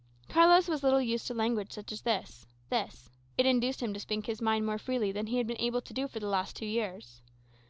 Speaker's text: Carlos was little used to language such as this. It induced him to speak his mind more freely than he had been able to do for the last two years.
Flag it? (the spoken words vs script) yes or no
yes